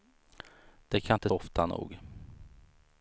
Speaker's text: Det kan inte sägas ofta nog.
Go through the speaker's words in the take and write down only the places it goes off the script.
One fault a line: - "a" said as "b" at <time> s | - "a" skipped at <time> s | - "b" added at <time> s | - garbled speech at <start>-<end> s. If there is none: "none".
- "sägas" skipped at 1.3 s